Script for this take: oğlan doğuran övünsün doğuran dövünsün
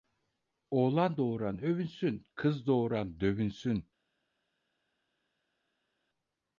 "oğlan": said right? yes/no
yes